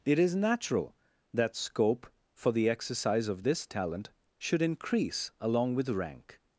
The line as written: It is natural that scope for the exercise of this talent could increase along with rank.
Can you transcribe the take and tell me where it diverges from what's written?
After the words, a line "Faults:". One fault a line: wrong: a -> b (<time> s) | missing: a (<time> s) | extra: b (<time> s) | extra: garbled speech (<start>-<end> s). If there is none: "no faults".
It is natural that scope for the exercise of this talent should increase along with rank.
Faults:
wrong: could -> should (4.4 s)